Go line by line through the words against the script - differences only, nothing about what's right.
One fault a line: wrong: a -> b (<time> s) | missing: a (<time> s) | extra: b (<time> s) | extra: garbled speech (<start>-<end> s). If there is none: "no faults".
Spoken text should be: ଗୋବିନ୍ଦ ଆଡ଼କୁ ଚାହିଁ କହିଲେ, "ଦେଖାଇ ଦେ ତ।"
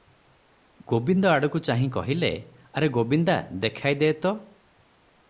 extra: ଆରେ ଗୋବିନ୍ଦା (2.7 s)